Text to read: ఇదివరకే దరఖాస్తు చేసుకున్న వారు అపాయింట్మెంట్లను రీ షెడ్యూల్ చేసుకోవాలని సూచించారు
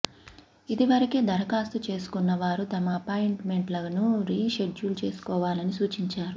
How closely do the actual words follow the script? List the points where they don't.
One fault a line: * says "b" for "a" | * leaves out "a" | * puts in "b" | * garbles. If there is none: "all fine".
* puts in "తమ"